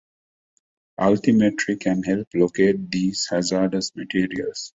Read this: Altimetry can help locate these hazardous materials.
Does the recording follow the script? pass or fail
pass